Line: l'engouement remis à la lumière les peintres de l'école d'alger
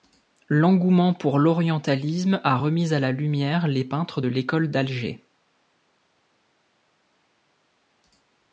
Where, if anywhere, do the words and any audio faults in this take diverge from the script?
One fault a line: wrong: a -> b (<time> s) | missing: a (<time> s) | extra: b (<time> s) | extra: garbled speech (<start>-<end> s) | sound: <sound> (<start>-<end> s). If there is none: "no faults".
extra: pour l'orientalisme a (1.1 s)